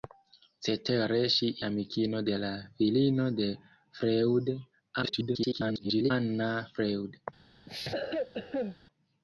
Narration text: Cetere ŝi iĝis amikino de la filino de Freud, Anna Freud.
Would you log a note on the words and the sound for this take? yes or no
yes